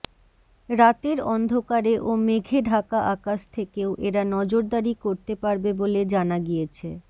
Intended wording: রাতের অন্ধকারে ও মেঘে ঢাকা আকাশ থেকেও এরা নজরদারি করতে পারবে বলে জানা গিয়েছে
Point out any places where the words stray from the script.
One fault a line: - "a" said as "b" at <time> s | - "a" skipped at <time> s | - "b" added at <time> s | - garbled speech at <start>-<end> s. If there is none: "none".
none